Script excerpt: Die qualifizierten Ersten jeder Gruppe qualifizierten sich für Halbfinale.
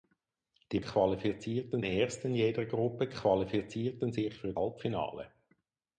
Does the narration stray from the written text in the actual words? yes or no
no